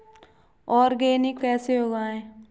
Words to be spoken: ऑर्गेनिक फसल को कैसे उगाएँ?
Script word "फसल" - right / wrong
wrong